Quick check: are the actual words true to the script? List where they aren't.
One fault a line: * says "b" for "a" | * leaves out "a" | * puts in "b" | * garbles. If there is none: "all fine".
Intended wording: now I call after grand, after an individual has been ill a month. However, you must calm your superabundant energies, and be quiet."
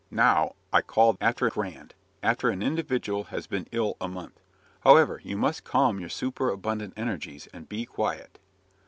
all fine